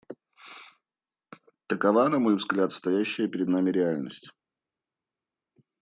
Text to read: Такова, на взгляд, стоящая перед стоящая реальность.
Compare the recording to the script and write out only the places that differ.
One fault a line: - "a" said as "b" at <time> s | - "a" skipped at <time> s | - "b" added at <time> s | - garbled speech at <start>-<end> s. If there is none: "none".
- "мой" added at 2.2 s
- "стоящая" said as "нами" at 3.5 s